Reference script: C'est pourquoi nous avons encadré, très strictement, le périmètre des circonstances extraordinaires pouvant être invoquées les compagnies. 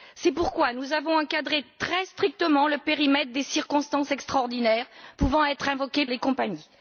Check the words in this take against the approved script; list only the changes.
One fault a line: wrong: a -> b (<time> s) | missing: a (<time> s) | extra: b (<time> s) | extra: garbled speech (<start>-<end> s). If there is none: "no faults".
no faults